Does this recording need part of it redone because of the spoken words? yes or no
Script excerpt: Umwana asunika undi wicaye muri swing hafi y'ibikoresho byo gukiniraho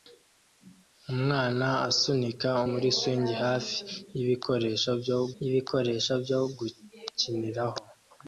yes